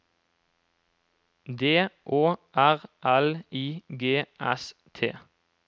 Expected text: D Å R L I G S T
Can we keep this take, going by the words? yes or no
yes